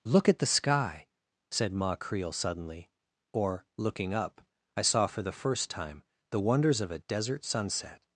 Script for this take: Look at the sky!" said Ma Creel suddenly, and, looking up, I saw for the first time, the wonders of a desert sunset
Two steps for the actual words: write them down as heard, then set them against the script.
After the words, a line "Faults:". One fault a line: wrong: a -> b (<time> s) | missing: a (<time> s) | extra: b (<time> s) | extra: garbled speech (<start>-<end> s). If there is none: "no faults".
Look at the sky!" said Ma Creel suddenly, or, looking up, I saw for the first time, the wonders of a desert sunset
Faults:
wrong: and -> or (3.3 s)